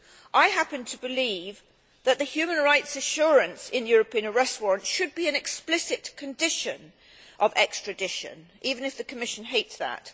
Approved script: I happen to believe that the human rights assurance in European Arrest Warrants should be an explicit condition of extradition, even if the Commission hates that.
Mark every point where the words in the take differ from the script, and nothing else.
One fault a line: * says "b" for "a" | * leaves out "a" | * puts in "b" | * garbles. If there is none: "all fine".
all fine